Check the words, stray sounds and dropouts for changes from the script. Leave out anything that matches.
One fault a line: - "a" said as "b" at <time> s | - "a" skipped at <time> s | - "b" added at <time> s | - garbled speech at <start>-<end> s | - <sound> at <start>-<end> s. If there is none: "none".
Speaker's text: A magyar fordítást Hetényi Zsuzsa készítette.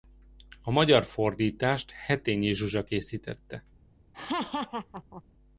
- laugh at 4.1-5.2 s